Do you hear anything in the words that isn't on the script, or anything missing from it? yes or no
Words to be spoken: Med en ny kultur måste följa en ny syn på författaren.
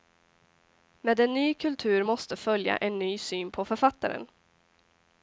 no